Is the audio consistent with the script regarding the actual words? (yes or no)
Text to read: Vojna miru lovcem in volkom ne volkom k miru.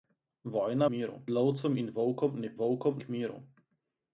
yes